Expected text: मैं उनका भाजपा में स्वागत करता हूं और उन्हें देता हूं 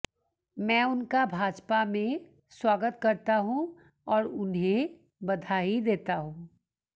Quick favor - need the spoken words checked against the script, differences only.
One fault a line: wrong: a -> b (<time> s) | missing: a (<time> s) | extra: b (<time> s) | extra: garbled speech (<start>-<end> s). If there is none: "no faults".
extra: बधाई (5.2 s)